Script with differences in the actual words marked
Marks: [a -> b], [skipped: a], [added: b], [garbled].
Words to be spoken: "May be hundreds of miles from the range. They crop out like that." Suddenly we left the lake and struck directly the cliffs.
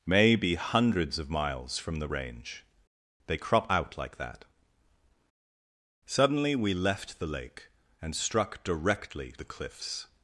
"May be hundreds of miles from the range. They crop out like that." Suddenly we left the lake and struck directly the cliffs.